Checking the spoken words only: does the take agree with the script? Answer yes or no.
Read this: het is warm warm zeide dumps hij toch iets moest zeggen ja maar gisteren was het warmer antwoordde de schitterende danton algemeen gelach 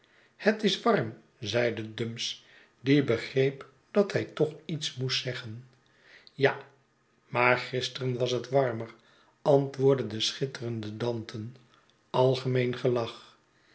no